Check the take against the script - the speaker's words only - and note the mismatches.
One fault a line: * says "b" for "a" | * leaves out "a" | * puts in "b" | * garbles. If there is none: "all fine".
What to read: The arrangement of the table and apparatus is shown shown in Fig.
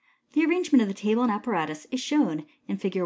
* leaves out "shown"